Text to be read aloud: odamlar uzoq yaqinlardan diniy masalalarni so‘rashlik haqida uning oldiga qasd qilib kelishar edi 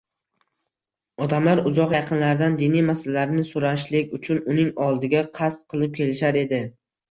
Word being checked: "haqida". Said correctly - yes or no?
no